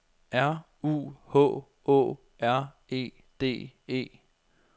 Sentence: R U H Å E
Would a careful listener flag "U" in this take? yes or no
no